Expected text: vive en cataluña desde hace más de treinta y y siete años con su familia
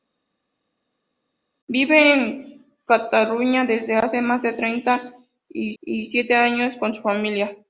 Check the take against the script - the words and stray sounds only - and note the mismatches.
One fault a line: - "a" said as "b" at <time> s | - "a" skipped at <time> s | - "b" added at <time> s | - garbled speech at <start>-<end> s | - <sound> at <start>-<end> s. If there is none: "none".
none